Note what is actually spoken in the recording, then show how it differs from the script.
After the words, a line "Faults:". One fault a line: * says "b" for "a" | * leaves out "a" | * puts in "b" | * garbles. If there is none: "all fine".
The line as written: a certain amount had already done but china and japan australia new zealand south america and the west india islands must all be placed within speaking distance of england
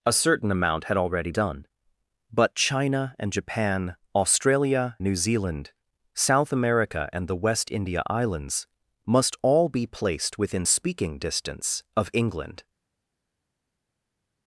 a certain amount had already done but china and japan australia new zealand south america and the west india islands must all be placed within speaking distance of england
Faults:
all fine